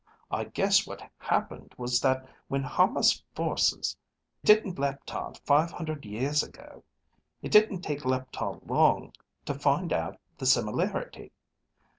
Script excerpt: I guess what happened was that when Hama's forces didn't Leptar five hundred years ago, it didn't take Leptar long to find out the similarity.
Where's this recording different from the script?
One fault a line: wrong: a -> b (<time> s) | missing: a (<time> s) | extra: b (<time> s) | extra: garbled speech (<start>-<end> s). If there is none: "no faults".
no faults